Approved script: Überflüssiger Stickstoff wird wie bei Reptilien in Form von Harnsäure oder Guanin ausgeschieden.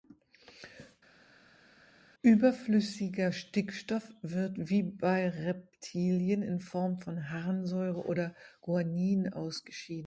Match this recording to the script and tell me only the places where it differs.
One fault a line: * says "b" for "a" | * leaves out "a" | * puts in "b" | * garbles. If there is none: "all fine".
all fine